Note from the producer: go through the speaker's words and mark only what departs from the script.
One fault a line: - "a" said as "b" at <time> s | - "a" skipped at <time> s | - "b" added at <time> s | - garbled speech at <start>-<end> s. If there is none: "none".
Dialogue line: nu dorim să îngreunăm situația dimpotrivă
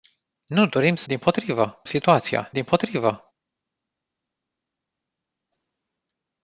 - "îngreunăm" said as "dimpotrivă" at 1.1 s